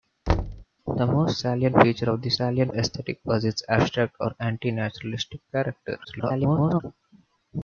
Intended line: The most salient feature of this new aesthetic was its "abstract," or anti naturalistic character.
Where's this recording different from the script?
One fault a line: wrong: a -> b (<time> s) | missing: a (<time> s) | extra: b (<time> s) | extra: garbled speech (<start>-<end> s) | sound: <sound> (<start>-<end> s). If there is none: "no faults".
sound: thud (0.3-0.7 s)
wrong: new -> salient (2.4 s)
extra: garbled speech (6.0-6.8 s)